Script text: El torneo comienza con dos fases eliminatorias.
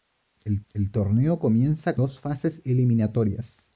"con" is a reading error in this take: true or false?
true